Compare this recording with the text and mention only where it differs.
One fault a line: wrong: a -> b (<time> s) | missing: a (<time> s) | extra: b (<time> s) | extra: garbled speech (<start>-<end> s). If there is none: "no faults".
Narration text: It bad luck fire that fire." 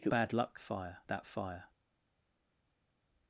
no faults